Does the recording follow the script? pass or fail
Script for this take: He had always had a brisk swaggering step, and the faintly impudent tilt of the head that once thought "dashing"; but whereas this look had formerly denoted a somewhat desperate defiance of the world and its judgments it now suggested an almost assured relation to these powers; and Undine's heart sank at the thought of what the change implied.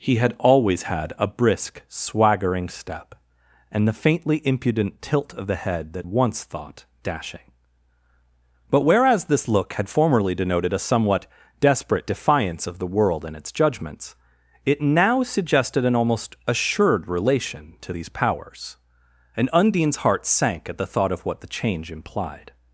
pass